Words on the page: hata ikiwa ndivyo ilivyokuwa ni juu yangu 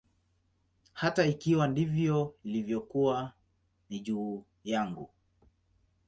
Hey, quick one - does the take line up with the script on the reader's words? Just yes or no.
yes